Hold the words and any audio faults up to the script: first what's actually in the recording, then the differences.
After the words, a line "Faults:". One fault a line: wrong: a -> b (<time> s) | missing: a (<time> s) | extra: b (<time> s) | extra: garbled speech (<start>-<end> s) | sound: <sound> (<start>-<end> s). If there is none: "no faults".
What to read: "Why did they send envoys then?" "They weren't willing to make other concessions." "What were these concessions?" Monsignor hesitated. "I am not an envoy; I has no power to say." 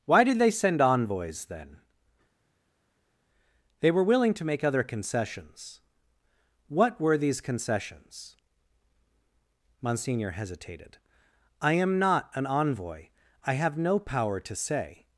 "Why did they send envoys then?" "They were willing to make other concessions." "What were these concessions?" Monsignor hesitated. "I am not an envoy; I have no power to say."
Faults:
wrong: weren't -> were (3.9 s)
wrong: has -> have (13.5 s)